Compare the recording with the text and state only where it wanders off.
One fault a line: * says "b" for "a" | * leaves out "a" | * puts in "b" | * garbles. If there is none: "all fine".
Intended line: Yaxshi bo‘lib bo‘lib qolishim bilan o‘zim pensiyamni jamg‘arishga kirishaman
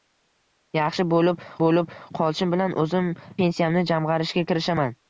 all fine